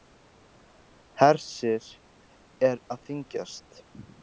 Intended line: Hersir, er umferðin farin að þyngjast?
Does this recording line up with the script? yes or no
no